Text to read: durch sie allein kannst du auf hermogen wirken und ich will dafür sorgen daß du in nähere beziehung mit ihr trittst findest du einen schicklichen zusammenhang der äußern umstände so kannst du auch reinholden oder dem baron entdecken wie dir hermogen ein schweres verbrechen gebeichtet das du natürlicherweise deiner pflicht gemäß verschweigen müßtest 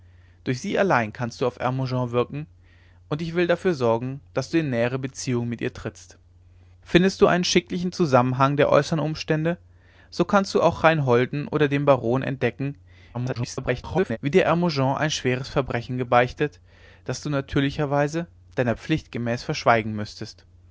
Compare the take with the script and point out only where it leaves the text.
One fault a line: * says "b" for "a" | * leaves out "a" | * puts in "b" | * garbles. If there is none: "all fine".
* garbles